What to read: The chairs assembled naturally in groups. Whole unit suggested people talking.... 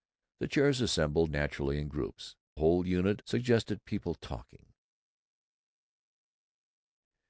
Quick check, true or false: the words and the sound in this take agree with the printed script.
true